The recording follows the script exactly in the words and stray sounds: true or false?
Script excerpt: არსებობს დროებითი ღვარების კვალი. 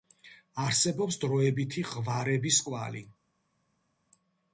true